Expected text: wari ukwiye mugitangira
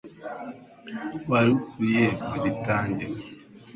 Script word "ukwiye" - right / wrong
right